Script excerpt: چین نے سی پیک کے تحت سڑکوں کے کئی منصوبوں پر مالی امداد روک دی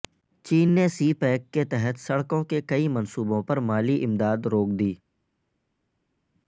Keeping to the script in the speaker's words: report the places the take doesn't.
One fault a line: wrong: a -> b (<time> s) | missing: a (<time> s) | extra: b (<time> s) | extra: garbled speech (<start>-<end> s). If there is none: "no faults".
no faults